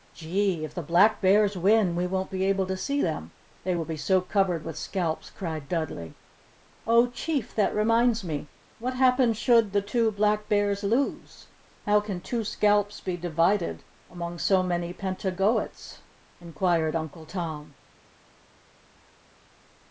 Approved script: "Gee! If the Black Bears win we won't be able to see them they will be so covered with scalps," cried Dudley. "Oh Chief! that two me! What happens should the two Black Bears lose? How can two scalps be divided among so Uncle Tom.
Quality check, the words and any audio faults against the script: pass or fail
fail